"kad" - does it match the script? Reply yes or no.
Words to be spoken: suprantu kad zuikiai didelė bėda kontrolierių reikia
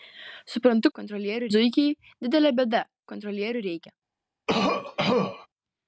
no